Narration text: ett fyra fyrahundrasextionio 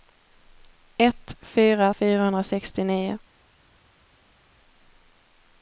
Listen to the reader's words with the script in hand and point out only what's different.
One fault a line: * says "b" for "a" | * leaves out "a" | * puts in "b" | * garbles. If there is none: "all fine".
all fine